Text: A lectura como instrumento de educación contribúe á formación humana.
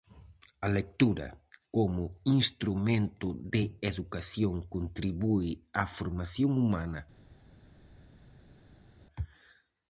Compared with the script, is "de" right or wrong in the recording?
right